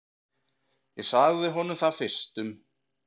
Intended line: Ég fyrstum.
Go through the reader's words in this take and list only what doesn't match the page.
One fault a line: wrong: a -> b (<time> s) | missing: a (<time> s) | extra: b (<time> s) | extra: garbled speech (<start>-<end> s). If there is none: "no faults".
extra: sagði honum það (1.1 s)